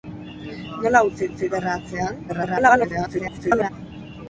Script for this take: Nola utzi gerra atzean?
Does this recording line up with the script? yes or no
no